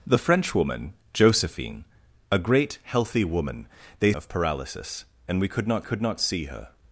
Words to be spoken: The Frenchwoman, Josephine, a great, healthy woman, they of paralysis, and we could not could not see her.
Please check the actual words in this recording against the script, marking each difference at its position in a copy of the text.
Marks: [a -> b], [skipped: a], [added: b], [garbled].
The Frenchwoman, Josephine, a great, healthy woman, they of paralysis, and we could not could not see her.